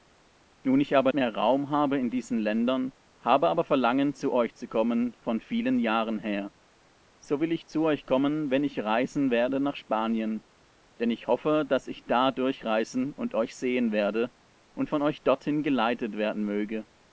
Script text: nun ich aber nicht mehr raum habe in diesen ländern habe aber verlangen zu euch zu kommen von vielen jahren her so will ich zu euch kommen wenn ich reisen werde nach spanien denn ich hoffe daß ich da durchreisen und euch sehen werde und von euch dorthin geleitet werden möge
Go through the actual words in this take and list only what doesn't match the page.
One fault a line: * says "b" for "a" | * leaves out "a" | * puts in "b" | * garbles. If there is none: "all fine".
* leaves out "nicht"